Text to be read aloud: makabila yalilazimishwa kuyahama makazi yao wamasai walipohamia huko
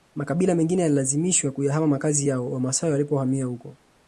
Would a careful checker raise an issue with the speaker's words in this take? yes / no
yes